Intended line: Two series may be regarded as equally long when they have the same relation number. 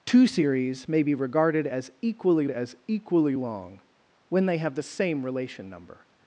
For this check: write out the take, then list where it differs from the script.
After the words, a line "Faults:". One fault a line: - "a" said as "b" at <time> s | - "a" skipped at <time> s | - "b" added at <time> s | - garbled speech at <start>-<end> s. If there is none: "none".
Two series may be regarded as equally as equally long when they have the same relation number.
Faults:
- "as equally" added at 2.5 s